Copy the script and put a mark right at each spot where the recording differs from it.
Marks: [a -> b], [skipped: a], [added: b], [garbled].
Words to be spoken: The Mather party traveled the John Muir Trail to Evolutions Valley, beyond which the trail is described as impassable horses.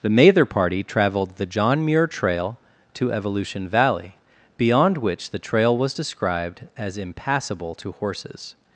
The Mather party traveled the John Muir Trail to [Evolutions -> Evolution] Valley, beyond which the trail [is -> was] described as impassable [added: to] horses.